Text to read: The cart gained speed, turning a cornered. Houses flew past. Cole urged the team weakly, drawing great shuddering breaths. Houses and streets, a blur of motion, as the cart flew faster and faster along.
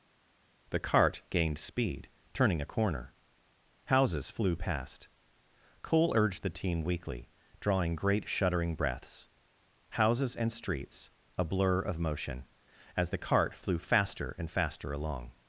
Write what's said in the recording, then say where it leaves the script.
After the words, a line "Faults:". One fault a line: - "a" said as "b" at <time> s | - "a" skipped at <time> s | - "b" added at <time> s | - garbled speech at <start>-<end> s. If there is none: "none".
The cart gained speed, turning a corner. Houses flew past. Cole urged the team weakly, drawing great shuddering breaths. Houses and streets, a blur of motion, as the cart flew faster and faster along.
Faults:
- "cornered" said as "corner" at 2.7 s